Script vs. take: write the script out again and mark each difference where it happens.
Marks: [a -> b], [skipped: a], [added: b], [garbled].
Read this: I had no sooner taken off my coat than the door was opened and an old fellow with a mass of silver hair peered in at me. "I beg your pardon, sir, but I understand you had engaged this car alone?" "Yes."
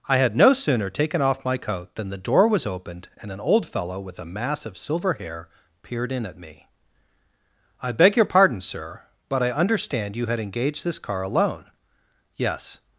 I had no sooner taken off my coat than the door was opened and an old fellow with a mass of silver hair peered in at me. "I beg your pardon, sir, but I understand you had engaged this car alone?" "Yes."